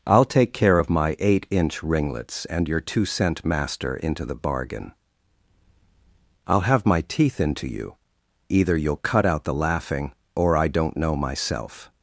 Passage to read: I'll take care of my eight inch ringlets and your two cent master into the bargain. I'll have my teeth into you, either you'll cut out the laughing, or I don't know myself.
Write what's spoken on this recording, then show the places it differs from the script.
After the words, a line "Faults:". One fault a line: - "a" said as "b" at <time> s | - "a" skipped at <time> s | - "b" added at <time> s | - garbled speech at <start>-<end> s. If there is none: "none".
I'll take care of my eight inch ringlets and your two cent master into the bargain. I'll have my teeth into you, either you'll cut out the laughing, or I don't know myself.
Faults:
none